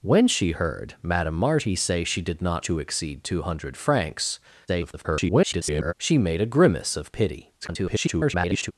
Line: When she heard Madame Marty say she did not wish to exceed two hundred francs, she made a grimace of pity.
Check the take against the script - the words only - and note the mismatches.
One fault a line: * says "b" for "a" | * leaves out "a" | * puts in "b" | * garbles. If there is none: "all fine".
* leaves out "wish"
* garbles
* garbles